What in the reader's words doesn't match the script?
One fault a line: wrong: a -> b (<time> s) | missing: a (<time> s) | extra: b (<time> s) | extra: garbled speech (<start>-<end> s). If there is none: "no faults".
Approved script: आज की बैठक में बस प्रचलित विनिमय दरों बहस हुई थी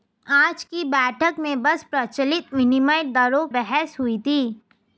no faults